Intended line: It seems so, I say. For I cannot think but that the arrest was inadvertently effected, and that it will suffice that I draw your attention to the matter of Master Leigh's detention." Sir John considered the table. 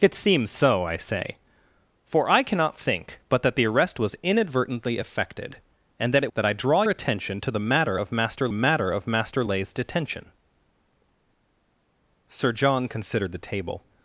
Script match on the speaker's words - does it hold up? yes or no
no